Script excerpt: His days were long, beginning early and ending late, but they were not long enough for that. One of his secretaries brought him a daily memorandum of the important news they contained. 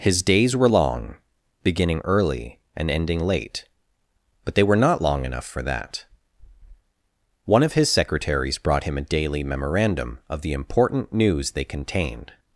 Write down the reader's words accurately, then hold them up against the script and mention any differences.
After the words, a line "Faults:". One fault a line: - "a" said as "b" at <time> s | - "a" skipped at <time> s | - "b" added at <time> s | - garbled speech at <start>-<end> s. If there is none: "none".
His days were long, beginning early and ending late, but they were not long enough for that. One of his secretaries brought him a daily memorandum of the important news they contained.
Faults:
none